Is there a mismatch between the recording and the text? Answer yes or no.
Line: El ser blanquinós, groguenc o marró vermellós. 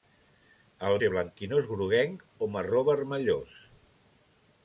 no